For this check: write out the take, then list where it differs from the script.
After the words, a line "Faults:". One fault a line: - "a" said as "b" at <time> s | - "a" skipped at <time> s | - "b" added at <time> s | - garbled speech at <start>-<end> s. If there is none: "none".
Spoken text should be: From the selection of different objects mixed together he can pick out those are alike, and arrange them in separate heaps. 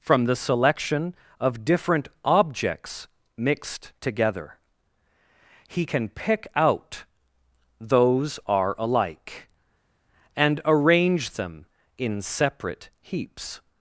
From the selection of different objects mixed together he can pick out those are alike, and arrange them in separate heaps.
Faults:
none